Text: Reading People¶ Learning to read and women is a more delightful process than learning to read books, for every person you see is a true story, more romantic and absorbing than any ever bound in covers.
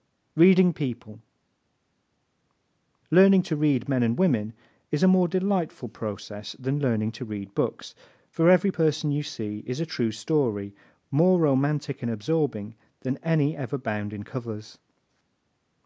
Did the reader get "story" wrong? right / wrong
right